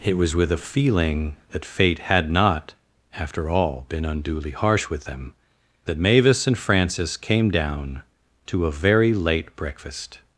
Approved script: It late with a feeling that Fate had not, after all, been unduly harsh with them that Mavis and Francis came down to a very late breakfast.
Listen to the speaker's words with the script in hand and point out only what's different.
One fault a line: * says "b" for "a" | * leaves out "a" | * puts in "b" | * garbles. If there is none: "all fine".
* says "was" for "late"